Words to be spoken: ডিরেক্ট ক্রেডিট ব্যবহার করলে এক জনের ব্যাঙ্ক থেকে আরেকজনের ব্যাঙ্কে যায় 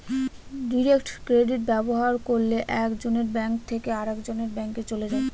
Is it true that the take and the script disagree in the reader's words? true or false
true